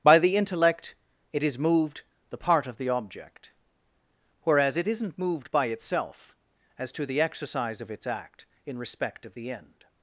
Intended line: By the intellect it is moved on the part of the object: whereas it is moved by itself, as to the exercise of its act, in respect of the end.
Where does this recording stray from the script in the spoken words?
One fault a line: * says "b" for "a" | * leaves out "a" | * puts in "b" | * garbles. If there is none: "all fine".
* leaves out "on"
* says "isn't" for "is"